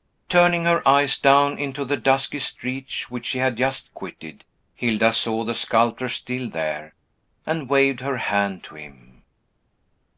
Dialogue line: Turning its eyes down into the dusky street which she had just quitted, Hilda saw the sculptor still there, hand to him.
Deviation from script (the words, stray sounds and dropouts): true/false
true